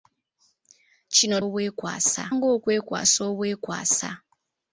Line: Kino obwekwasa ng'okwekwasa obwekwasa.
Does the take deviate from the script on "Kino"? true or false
false